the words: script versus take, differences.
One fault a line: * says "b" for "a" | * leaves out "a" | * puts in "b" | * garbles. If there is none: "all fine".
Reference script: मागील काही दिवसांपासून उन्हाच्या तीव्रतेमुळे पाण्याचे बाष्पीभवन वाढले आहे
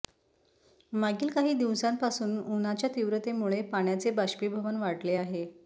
all fine